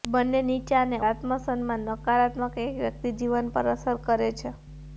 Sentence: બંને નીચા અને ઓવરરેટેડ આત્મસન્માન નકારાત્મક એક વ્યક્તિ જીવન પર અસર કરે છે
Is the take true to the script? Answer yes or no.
no